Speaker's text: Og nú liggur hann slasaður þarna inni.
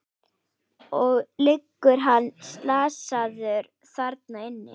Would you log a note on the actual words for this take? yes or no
yes